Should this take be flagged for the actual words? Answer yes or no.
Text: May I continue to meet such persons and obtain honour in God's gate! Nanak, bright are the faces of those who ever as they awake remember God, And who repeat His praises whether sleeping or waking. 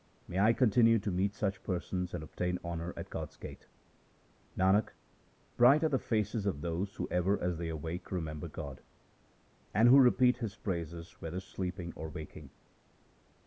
yes